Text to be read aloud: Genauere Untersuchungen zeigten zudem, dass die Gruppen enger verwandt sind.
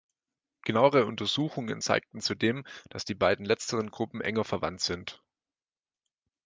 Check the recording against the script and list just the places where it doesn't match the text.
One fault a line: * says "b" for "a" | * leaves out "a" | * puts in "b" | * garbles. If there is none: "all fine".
* puts in "beiden letzteren"